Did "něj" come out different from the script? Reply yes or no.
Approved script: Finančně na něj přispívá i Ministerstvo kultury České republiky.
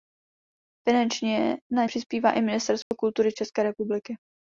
yes